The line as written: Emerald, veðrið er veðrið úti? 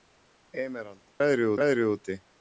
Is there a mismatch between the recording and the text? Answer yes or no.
no